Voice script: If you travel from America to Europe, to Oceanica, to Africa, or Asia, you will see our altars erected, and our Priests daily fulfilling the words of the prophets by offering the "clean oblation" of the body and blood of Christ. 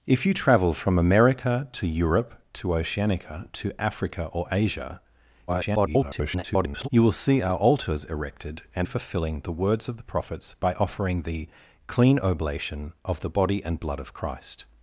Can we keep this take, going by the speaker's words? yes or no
no